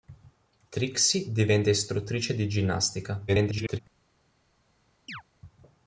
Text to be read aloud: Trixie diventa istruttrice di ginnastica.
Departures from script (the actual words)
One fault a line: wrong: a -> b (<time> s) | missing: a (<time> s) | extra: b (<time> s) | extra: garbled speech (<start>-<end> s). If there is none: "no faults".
extra: garbled speech (3.3-3.8 s)